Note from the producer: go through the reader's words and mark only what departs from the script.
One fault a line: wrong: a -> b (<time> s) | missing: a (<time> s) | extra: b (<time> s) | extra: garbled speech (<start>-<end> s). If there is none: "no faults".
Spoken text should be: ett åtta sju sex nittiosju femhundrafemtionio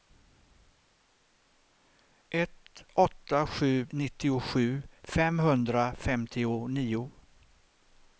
missing: sex (3.9 s)